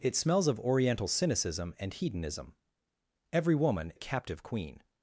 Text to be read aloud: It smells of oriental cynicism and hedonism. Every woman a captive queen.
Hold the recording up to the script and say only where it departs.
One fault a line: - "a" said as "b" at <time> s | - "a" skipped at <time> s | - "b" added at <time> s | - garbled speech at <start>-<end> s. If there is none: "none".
none